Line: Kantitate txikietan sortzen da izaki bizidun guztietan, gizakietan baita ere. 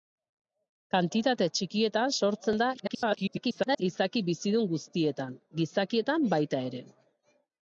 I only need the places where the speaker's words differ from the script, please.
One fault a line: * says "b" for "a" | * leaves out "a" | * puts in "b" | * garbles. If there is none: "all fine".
* garbles